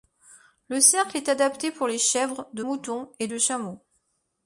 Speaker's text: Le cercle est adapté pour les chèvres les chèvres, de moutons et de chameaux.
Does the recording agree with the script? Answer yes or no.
no